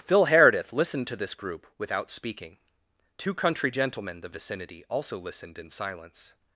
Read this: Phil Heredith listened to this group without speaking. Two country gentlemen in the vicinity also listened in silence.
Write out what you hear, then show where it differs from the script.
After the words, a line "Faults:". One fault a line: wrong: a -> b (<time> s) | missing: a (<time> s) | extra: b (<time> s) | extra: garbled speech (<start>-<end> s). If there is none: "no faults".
Phil Heredith listened to this group without speaking. Two country gentlemen the vicinity also listened in silence.
Faults:
missing: in (4.2 s)